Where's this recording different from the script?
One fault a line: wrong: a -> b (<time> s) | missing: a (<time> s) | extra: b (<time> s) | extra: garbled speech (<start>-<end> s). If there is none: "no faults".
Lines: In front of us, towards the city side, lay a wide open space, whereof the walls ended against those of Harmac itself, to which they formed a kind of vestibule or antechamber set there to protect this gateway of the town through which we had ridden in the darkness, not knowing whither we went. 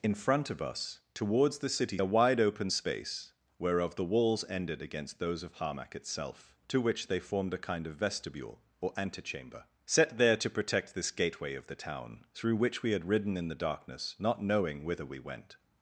missing: side lay (2.0 s)